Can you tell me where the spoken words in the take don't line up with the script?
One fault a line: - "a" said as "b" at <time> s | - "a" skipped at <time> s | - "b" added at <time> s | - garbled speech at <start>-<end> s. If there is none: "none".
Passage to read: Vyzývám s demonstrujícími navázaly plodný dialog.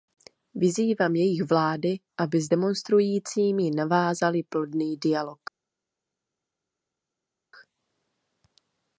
- "jejich vlády aby" added at 1.1 s